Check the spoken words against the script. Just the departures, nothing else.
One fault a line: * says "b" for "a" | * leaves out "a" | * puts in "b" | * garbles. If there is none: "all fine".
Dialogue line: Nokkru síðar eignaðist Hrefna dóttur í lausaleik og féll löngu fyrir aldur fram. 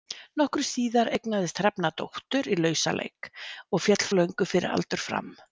all fine